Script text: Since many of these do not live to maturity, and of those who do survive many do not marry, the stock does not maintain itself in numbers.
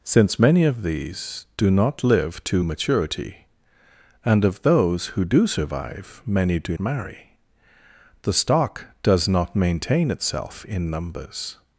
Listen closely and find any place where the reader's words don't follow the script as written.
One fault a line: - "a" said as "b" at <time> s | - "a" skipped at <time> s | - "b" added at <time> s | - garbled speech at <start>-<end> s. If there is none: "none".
- "not" skipped at 6.8 s